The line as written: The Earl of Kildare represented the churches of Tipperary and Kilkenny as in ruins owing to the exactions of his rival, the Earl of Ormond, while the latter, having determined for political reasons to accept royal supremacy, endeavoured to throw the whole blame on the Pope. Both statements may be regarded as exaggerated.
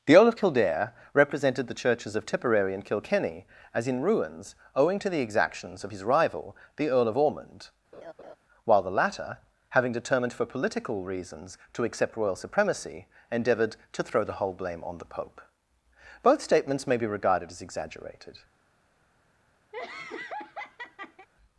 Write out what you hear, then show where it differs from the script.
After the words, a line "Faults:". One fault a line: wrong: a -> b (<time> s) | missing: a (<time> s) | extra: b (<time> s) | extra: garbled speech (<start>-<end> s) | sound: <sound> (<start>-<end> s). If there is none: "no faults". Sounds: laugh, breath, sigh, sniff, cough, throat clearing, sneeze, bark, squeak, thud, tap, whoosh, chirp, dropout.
The Earl of Kildare represented the churches of Tipperary and Kilkenny as in ruins owing to the exactions of his rival, the Earl of Ormond, while the latter, having determined for political reasons to accept royal supremacy, endeavoured to throw the whole blame on the Pope. Both statements may be regarded as exaggerated.
Faults:
sound: laugh (7.9-8.4 s)
sound: laugh (19.7-21.3 s)